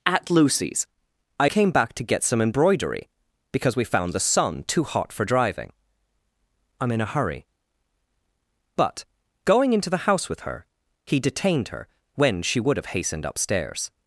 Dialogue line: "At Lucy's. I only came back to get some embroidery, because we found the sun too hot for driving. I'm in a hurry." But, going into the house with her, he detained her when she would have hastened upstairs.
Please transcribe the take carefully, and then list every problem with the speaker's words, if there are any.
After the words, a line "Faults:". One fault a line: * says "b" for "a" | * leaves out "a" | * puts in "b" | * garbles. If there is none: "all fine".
"At Lucy's. I came back to get some embroidery, because we found the sun too hot for driving. I'm in a hurry." But, going into the house with her, he detained her when she would have hastened upstairs.
Faults:
* leaves out "only"